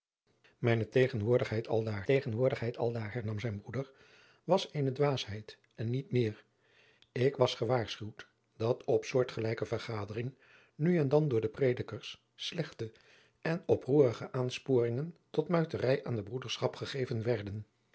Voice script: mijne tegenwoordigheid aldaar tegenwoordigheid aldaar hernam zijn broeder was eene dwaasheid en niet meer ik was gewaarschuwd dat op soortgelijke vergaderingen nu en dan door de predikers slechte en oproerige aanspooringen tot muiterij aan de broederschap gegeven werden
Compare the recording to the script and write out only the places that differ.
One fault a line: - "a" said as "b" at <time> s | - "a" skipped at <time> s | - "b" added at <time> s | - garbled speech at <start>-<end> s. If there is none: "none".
none